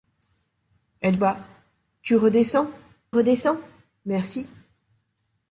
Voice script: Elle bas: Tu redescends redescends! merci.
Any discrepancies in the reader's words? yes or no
no